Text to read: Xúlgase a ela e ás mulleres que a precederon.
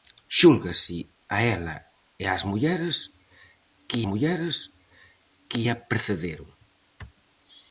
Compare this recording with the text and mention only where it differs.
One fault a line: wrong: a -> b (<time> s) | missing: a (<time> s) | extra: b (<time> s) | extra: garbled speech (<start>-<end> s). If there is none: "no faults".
extra: mulleres que (4.1 s)